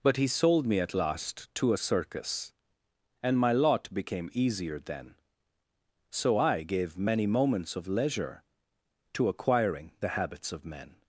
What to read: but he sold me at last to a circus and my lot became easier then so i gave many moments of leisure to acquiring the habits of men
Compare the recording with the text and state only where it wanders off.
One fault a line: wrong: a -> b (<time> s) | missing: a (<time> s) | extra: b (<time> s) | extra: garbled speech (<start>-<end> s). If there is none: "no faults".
no faults